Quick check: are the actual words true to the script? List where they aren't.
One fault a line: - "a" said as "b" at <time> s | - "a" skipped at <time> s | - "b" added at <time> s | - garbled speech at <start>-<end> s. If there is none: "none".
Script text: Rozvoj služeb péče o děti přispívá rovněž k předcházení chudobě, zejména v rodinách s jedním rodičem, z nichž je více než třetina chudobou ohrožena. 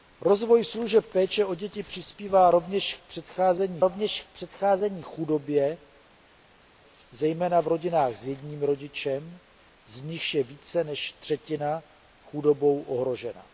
- "rovněž k předcházení" added at 3.8 s